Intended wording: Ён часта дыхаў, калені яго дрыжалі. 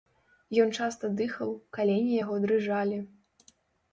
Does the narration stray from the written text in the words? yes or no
no